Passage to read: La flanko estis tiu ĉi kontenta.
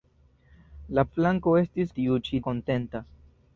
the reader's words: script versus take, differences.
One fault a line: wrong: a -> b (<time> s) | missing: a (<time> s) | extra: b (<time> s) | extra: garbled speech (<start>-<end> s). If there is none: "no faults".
no faults